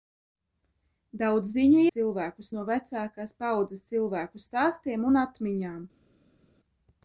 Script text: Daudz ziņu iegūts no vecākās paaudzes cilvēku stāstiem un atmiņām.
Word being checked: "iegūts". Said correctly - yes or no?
no